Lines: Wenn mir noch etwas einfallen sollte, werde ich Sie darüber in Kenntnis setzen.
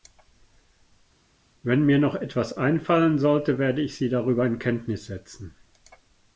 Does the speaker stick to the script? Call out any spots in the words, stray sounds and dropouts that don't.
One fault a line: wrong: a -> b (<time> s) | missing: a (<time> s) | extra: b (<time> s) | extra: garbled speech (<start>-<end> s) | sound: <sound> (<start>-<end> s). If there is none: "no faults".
no faults